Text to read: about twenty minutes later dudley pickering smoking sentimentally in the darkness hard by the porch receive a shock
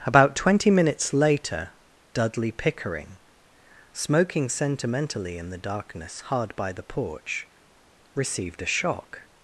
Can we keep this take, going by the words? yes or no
no